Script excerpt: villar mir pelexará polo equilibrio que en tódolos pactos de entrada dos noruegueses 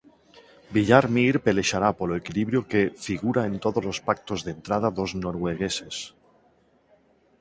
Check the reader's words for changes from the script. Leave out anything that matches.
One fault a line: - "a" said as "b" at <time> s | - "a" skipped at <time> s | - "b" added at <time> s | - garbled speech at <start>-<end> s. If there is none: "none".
- "figura" added at 3.0 s